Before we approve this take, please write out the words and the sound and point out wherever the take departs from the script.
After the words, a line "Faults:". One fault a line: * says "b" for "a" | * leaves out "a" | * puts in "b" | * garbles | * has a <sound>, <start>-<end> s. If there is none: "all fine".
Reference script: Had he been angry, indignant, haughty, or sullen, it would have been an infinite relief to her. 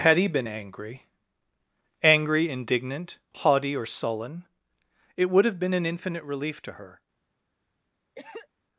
Had he been angry angry, indignant, haughty, or sullen, it would have been an infinite relief to her.
Faults:
* puts in "angry"
* has a cough, 8.2-8.5 s